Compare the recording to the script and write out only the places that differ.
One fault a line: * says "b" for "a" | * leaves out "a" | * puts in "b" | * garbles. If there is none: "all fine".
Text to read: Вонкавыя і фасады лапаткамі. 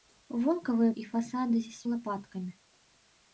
all fine